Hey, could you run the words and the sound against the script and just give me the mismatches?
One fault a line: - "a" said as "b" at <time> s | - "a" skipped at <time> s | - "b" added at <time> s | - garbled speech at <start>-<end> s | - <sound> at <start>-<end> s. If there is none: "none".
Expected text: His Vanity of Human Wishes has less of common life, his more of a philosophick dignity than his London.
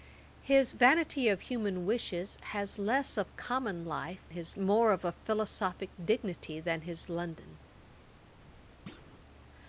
- thud at 8.9-9.2 s